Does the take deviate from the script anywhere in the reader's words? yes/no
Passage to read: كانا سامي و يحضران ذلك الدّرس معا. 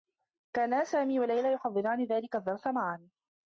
yes